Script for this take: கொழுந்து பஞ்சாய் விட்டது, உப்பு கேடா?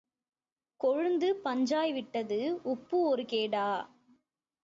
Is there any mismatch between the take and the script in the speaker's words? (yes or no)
yes